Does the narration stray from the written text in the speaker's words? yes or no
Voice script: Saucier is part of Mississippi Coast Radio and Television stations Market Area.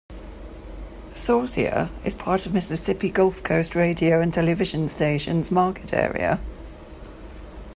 yes